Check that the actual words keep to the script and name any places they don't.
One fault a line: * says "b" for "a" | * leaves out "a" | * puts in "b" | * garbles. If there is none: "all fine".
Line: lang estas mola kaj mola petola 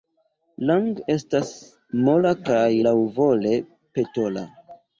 * says "laŭvole" for "mola"